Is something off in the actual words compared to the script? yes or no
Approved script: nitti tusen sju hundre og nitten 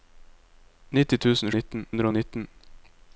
yes